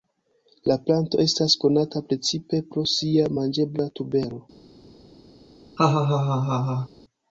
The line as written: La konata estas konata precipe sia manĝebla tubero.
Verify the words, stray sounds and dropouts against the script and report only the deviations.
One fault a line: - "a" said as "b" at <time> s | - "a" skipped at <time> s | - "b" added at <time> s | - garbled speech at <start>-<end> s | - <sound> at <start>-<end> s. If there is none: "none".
- "konata" said as "planto" at 0.9 s
- "pro" added at 2.7 s
- laugh at 5.8-6.9 s